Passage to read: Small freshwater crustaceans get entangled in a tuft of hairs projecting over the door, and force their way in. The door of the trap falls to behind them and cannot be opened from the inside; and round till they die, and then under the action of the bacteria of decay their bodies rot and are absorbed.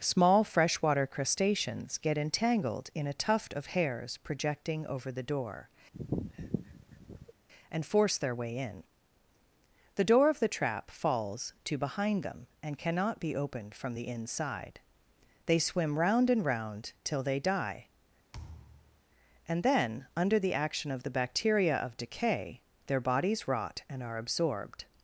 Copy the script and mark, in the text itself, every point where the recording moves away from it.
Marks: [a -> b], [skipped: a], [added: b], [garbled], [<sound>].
Small freshwater crustaceans get entangled in a tuft of hairs projecting over the door, [sniff] and force their way in. The door of the trap falls to behind them and cannot be opened from the inside; [added: they swim round] and round till they die, [thud] and then under the action of the bacteria of decay their bodies rot and are absorbed.